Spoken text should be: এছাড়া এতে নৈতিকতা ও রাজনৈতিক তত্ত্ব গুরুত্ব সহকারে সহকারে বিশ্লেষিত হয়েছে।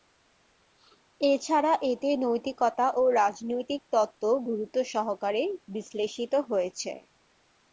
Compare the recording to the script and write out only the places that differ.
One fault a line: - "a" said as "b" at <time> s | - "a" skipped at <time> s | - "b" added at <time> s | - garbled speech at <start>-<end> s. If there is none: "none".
- "সহকারে" skipped at 5.4 s